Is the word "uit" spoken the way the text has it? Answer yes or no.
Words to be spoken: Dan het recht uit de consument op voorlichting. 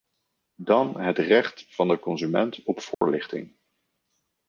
no